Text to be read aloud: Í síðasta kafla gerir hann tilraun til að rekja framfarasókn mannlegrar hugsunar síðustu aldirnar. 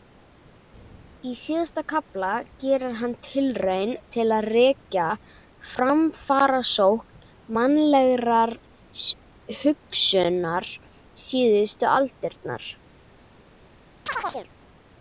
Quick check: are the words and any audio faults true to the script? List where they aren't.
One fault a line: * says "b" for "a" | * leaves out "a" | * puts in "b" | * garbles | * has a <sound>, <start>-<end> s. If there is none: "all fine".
* has a chirp, 14.1-14.5 s